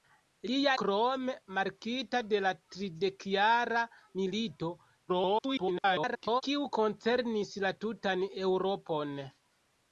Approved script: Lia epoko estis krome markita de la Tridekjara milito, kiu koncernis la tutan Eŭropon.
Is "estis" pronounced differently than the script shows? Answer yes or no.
yes